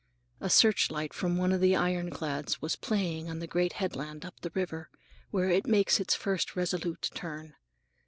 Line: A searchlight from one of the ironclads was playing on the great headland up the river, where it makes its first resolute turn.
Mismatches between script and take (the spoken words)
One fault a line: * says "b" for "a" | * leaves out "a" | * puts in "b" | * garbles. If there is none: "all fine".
all fine